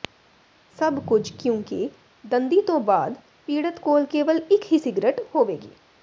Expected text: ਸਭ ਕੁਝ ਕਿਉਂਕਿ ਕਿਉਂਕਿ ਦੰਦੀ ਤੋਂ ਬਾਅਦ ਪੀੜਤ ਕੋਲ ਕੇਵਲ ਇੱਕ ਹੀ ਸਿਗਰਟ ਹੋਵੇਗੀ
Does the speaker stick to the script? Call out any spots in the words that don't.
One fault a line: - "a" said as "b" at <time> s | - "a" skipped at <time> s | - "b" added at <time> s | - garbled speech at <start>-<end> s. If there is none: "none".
- "ਕਿਉਂਕਿ" skipped at 1.9 s